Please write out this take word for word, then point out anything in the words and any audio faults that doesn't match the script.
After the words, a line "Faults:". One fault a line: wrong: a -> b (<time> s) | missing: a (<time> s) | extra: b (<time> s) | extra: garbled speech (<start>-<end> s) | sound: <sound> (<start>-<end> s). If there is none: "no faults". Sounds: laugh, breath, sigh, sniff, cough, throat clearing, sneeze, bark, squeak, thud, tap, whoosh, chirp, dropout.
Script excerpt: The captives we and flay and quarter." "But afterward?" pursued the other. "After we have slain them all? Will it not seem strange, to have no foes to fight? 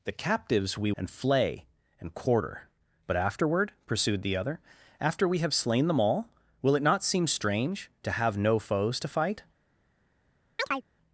The captives we and flay and quarter." "But afterward?" pursued the other. "After we have slain them all? Will it not seem strange, to have no foes to fight?
Faults:
sound: chirp (10.6-10.8 s)